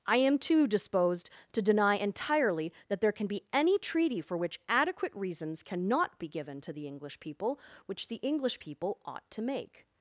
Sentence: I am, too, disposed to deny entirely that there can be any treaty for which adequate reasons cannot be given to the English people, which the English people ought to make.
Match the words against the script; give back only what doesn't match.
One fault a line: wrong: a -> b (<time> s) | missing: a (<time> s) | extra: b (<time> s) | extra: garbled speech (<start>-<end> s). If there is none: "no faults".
no faults